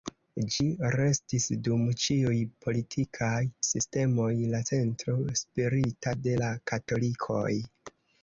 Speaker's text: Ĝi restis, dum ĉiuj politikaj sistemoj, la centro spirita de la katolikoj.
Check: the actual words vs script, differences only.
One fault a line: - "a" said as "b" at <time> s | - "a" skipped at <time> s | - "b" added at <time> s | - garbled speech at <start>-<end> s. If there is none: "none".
none